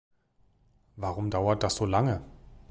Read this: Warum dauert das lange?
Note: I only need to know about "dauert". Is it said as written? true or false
true